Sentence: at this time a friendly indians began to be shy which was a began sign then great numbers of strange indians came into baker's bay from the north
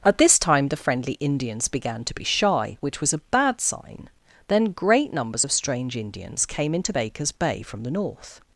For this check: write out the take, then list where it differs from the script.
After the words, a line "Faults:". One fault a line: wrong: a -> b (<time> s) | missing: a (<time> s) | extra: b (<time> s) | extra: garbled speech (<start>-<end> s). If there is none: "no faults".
at this time the friendly indians began to be shy which was a bad sign then great numbers of strange indians came into baker's bay from the north
Faults:
wrong: a -> the (0.7 s)
wrong: began -> bad (3.3 s)